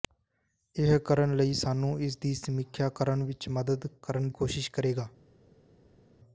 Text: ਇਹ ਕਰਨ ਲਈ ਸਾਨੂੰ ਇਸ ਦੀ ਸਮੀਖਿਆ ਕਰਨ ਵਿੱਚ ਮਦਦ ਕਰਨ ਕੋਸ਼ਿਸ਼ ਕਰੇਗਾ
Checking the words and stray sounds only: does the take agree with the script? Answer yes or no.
yes